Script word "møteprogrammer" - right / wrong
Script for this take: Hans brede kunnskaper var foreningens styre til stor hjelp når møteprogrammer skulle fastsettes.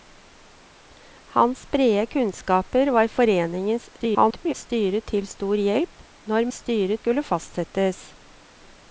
wrong